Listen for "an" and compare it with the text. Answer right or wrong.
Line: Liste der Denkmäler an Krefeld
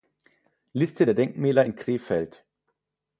wrong